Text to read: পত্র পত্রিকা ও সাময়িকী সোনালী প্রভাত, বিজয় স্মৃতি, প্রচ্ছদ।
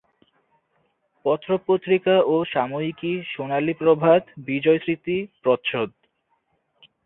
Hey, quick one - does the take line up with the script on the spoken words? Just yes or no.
yes